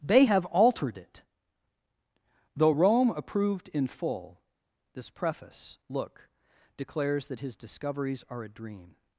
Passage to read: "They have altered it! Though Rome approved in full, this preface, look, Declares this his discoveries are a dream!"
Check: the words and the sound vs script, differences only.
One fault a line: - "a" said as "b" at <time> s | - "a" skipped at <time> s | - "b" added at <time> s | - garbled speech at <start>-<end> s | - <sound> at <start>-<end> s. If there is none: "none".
- "this" said as "that" at 7.3 s